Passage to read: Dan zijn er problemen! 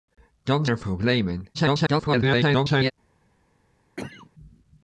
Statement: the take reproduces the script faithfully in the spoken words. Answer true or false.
false